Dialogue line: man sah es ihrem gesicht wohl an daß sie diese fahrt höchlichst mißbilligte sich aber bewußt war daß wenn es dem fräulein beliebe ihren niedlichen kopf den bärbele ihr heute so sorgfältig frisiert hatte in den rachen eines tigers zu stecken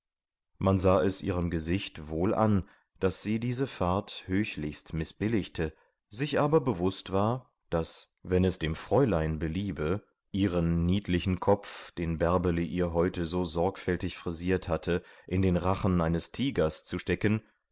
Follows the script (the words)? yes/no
yes